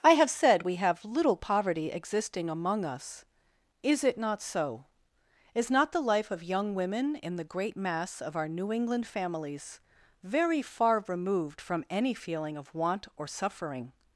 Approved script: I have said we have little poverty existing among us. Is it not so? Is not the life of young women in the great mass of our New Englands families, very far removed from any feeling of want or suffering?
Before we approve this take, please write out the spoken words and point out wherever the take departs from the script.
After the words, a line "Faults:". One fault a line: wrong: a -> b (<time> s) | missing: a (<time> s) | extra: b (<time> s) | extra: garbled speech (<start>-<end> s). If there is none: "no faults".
I have said we have little poverty existing among us. Is it not so? Is not the life of young women in the great mass of our New England families, very far removed from any feeling of want or suffering?
Faults:
wrong: Englands -> England (8.7 s)